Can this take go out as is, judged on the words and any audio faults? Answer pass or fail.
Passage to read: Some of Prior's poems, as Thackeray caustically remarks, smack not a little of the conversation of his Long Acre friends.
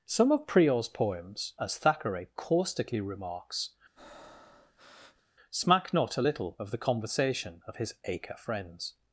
fail